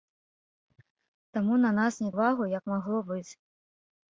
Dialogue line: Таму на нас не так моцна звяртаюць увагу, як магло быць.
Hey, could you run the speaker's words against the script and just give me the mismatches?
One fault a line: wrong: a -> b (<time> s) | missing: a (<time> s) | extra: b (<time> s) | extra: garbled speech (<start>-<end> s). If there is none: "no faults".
missing: так моцна звяртаюць (2.1 s)